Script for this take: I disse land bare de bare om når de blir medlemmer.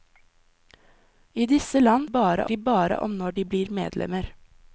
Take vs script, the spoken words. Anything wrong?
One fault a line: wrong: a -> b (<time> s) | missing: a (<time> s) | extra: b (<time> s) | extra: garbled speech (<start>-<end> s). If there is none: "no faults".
no faults